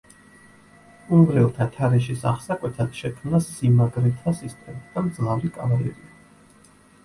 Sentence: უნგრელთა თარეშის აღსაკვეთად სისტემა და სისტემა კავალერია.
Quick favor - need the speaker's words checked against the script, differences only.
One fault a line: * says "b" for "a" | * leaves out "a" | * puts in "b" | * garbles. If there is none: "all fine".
* puts in "შექმნა სიმაგრეთა"
* says "მძლავრი" for "სისტემა"